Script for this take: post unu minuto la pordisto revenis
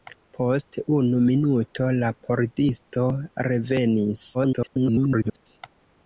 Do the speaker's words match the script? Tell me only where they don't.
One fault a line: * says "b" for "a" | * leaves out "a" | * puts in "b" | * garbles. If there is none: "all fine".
* garbles